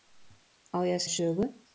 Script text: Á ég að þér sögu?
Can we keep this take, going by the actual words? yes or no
yes